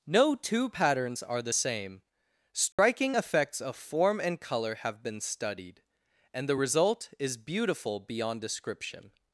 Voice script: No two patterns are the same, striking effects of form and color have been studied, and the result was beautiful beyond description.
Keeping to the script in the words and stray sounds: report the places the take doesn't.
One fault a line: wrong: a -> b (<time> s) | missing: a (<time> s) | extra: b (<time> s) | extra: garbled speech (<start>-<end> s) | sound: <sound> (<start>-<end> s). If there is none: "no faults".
sound: dropout (2.7-2.8 s)
wrong: was -> is (7.2 s)